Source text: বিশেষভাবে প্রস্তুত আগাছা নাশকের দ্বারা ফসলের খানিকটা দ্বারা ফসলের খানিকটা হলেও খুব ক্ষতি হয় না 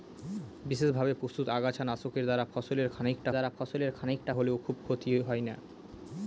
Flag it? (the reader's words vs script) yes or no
no